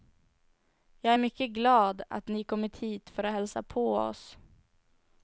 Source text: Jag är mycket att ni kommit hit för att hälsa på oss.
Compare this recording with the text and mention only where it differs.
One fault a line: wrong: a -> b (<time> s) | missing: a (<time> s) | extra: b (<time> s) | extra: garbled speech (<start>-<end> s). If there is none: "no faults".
extra: glad (1.5 s)